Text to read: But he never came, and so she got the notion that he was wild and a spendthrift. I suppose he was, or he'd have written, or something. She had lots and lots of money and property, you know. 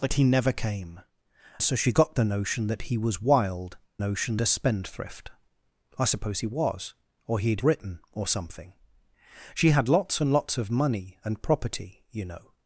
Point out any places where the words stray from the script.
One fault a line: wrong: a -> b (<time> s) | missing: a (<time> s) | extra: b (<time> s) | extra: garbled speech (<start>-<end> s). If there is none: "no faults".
missing: and (1.0 s)
wrong: and -> notion (4.0 s)
missing: have (7.6 s)